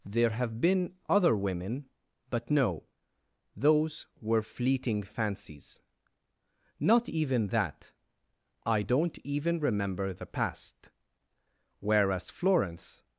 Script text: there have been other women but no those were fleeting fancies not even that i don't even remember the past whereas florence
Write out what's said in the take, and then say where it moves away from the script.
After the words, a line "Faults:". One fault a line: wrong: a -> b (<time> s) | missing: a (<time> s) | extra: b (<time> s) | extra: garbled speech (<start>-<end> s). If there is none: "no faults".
there have been other women but no those were fleeting fancies not even that i don't even remember the past whereas florence
Faults:
no faults